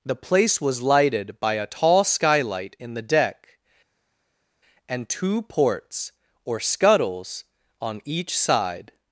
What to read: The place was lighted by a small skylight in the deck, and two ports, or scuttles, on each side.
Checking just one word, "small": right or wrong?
wrong